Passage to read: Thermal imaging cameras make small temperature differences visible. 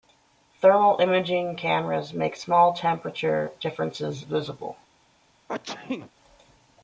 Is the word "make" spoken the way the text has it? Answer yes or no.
yes